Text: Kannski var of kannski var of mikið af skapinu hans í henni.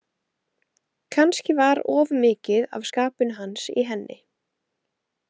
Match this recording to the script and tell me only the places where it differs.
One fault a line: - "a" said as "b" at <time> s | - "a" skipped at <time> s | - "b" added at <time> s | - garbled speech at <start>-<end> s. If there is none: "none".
- "kannski var of" skipped at 2.1 s